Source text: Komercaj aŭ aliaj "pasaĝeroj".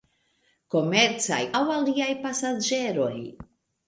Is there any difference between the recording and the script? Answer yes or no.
no